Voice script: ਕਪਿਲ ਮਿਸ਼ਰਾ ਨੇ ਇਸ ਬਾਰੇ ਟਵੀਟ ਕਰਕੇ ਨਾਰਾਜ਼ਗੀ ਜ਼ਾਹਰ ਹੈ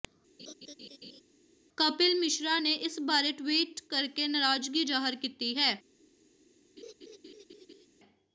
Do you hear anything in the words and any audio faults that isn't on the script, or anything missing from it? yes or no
yes